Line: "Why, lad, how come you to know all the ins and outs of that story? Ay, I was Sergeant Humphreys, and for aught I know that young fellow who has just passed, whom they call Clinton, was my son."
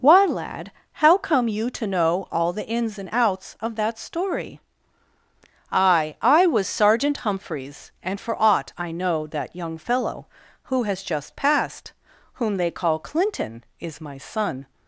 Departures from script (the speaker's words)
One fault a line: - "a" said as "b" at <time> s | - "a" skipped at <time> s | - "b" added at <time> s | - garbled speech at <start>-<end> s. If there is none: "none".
- "was" said as "is" at 13.8 s